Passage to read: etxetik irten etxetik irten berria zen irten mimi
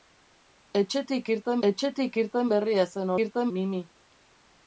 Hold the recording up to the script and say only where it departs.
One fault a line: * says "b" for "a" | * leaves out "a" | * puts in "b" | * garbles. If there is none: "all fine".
all fine